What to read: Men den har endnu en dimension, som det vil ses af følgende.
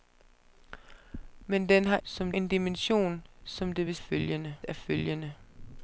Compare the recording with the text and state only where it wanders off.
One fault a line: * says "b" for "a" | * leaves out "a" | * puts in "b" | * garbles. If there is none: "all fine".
* says "som" for "endnu"
* says "følgende" for "ses"